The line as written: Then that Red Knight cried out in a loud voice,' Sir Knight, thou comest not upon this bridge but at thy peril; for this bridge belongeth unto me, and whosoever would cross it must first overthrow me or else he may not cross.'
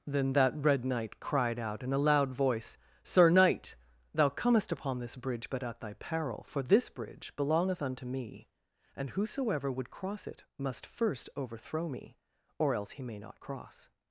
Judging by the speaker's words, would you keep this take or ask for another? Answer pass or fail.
fail